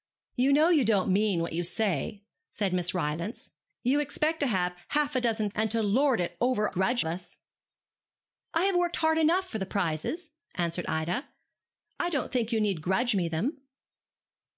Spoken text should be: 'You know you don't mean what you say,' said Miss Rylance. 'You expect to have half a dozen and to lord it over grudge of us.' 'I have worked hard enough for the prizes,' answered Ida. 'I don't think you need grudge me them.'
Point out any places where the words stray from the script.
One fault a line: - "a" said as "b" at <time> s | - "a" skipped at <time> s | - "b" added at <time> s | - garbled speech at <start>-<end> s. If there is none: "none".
none